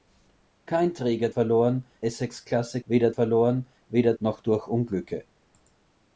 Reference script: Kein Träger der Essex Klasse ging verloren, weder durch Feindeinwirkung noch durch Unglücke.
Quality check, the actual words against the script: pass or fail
fail